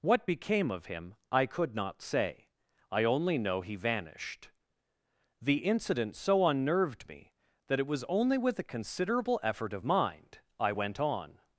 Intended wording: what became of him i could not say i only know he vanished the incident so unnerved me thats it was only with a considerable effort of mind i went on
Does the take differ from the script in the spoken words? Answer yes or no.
yes